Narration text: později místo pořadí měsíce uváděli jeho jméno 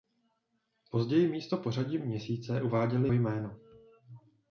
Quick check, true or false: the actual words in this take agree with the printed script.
false